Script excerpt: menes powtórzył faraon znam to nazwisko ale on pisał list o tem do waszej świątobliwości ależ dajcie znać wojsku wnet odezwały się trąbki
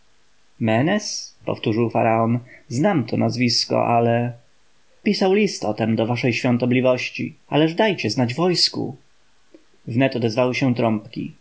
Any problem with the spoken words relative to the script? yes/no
yes